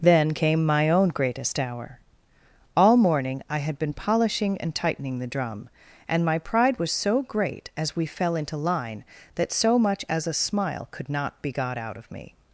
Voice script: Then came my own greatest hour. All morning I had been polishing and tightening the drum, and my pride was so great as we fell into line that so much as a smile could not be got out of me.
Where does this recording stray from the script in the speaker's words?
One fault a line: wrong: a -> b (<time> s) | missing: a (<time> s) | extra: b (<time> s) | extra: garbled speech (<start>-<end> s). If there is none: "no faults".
no faults